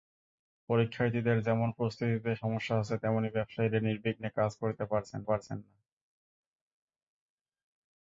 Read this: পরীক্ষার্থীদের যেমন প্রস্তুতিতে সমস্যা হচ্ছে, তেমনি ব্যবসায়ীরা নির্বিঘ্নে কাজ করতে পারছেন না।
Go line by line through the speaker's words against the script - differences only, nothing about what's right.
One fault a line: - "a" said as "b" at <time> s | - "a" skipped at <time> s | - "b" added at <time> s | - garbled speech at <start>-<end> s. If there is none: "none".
- "পারছেন" added at 5.2 s